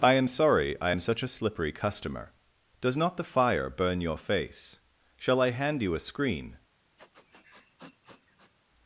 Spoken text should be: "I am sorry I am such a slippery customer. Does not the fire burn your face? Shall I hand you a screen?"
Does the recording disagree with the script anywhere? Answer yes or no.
no